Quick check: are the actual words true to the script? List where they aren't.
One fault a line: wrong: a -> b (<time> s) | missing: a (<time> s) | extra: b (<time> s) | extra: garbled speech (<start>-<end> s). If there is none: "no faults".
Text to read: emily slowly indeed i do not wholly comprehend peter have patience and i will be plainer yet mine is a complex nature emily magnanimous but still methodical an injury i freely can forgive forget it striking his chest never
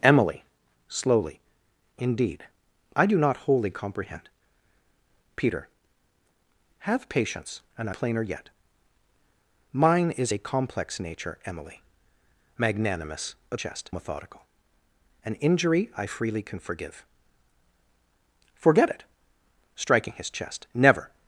missing: will be (8.0 s)
wrong: still -> chest (13.5 s)